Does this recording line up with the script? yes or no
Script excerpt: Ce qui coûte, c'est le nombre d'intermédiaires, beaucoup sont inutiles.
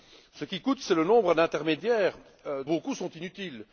yes